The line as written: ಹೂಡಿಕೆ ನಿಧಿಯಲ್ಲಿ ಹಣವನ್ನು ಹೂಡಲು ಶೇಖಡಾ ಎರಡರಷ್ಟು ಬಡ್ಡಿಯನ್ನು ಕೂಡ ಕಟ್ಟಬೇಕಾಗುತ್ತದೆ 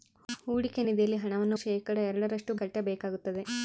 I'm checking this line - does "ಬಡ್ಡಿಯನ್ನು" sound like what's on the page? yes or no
no